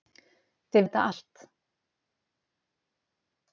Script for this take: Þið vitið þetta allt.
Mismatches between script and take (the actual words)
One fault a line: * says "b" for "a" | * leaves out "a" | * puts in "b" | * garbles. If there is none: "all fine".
* leaves out "vitið"